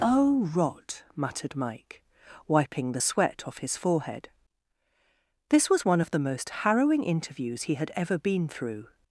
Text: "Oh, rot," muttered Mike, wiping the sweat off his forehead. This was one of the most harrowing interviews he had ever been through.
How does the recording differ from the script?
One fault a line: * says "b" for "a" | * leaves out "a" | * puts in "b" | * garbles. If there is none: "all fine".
all fine